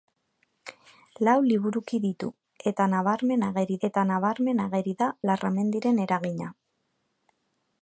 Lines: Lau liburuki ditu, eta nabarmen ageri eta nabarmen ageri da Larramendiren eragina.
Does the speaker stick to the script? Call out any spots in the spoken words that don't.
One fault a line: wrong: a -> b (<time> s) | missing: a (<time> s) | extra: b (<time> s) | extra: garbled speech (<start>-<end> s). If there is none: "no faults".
no faults